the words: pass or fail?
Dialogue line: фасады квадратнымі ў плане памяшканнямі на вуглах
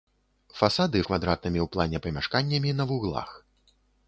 pass